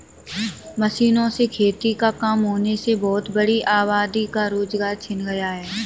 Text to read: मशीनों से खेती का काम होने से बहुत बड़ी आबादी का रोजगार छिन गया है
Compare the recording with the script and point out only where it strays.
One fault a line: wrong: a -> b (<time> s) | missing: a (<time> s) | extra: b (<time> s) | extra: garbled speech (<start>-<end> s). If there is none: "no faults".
no faults